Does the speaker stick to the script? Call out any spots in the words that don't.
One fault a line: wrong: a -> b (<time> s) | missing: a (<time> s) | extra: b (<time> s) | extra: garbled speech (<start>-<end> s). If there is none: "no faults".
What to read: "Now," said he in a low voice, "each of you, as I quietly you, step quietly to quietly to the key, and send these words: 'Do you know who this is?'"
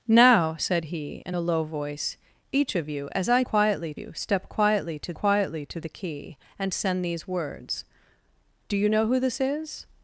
no faults